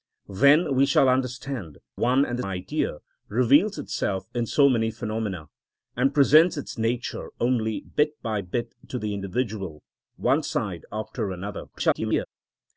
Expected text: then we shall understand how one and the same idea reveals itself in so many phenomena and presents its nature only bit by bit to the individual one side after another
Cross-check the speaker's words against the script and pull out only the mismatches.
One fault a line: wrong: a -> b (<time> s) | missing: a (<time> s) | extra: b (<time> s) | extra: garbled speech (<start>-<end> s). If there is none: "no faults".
missing: how (1.8 s)
missing: same (2.4 s)
extra: garbled speech (11.7-12.3 s)